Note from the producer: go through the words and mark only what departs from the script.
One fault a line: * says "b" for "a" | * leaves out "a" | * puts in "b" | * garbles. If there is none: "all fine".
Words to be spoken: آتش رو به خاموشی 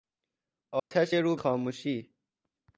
* leaves out "به"